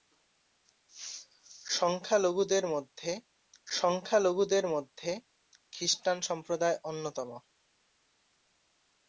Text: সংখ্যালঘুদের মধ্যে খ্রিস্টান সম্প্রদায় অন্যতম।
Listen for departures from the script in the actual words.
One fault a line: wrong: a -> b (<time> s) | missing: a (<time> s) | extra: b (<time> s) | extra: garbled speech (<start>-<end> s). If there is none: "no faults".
extra: সংখ্যালঘুদের মধ্যে (3.7 s)